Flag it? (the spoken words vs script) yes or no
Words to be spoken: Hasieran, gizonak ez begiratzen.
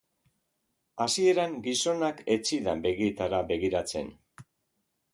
yes